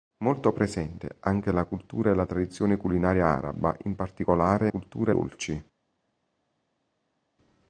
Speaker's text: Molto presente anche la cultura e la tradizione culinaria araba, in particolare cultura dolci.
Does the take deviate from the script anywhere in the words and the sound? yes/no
no